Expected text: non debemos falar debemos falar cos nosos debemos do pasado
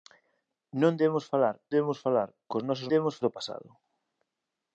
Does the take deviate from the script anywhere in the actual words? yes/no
no